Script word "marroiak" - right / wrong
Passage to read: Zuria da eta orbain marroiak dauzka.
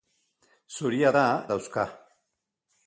wrong